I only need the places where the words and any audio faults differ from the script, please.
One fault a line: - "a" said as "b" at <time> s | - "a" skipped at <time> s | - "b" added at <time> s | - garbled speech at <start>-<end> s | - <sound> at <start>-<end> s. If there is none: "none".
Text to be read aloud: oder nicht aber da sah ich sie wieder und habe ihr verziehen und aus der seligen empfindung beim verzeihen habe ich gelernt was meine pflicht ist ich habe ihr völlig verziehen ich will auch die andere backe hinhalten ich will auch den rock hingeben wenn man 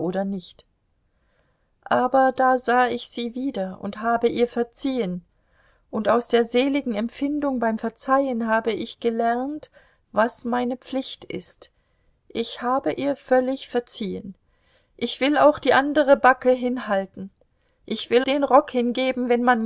- "auch" skipped at 18.3 s